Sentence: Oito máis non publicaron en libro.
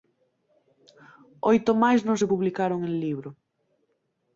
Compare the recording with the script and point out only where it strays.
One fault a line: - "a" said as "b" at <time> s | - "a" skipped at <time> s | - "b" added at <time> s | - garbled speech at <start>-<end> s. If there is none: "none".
- "se" added at 2.2 s